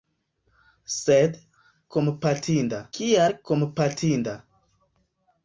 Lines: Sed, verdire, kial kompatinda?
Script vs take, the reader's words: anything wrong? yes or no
yes